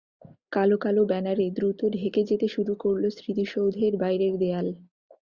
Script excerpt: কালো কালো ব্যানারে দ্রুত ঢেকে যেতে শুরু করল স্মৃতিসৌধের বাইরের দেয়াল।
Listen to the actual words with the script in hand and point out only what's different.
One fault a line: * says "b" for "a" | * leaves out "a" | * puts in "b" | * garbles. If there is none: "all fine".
all fine